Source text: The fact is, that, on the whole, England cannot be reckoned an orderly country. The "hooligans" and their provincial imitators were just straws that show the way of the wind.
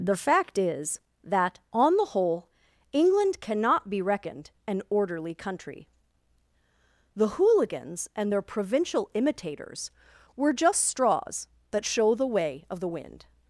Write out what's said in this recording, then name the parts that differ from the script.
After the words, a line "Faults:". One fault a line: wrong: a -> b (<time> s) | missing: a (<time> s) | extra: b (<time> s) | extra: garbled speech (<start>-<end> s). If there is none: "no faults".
The fact is, that, on the whole, England cannot be reckoned an orderly country. The "hooligans" and their provincial imitators were just straws that show the way of the wind.
Faults:
no faults